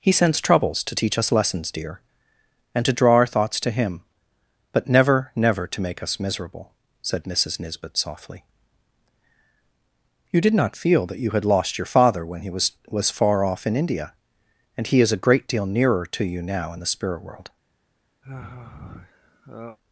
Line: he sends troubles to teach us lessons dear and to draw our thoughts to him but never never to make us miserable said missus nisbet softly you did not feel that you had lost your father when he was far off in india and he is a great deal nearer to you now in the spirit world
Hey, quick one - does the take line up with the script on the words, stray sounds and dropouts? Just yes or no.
no